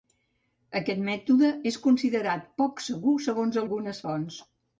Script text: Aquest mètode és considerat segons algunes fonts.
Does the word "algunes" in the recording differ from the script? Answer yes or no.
no